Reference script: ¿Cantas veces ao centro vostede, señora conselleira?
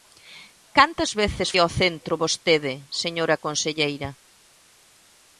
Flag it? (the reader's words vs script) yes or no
no